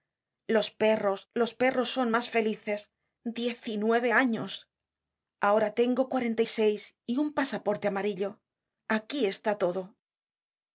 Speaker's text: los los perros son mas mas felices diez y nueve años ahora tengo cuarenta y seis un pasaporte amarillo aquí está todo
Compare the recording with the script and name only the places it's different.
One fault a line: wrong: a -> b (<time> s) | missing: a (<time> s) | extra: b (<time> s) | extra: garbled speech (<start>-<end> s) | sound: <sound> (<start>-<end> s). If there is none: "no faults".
extra: perros (0.8 s)
missing: mas (2.3 s)
extra: y (7.1 s)